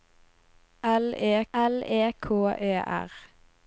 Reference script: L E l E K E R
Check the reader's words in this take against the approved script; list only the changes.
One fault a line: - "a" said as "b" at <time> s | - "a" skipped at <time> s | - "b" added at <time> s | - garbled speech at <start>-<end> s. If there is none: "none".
none